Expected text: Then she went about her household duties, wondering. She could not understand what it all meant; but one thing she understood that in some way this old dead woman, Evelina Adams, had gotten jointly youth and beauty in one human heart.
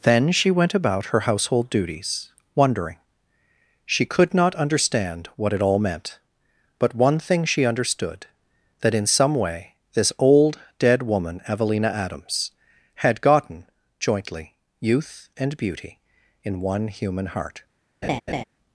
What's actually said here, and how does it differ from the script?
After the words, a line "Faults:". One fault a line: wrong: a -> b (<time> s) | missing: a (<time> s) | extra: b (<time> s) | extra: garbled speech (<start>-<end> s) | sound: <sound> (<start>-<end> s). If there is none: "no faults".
Then she went about her household duties, wondering. She could not understand what it all meant; but one thing she understood that in some way this old dead woman, Evelina Adams, had gotten jointly youth and beauty in one human heart.
Faults:
sound: laugh (18.0-18.4 s)